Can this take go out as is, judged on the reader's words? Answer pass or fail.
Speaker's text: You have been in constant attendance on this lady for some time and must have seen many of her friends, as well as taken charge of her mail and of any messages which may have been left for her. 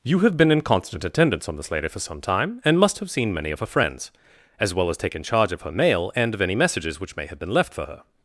pass